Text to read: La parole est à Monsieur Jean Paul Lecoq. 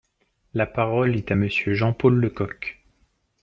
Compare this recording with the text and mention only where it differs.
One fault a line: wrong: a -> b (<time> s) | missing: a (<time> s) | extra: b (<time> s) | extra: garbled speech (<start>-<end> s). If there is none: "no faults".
no faults